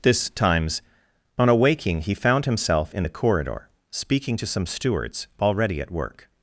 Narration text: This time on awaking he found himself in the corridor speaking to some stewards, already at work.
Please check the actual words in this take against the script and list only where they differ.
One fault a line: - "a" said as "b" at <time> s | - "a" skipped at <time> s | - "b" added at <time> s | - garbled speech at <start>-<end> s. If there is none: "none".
- "time" said as "times" at 0.3 s